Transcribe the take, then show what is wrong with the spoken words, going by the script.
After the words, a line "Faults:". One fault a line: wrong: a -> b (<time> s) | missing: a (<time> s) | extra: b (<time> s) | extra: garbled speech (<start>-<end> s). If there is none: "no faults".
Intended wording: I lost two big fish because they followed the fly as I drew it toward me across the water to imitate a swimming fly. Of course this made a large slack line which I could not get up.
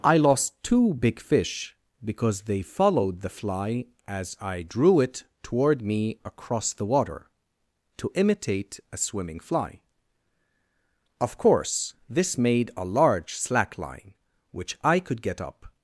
I lost two big fish because they followed the fly as I drew it toward me across the water to imitate a swimming fly. Of course this made a large slack line which I could get up.
Faults:
missing: not (15.2 s)